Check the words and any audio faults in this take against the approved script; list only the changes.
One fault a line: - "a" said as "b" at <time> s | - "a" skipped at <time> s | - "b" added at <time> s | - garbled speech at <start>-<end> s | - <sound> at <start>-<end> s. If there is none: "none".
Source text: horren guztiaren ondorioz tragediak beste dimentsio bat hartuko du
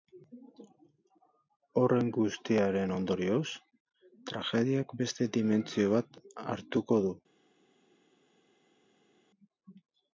none